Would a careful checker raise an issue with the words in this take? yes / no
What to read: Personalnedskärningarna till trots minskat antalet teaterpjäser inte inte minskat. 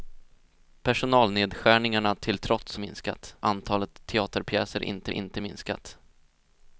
no